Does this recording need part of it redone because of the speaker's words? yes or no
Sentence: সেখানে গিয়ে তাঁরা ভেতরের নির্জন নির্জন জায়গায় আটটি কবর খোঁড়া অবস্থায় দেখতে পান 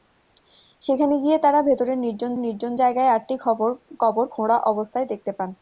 no